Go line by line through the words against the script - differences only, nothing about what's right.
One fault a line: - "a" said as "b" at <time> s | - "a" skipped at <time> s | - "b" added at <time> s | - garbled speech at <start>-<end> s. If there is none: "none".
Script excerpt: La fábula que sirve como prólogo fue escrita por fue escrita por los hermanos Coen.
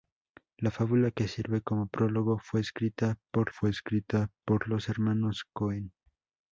none